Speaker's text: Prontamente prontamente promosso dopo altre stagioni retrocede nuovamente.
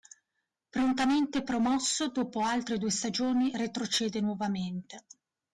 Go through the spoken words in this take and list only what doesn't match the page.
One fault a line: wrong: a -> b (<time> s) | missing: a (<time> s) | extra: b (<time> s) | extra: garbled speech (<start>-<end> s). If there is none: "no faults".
missing: prontamente (1.4 s)
extra: due (2.8 s)